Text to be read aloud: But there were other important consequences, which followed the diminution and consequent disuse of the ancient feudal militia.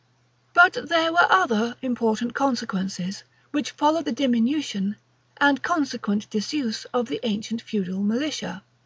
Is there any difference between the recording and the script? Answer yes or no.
no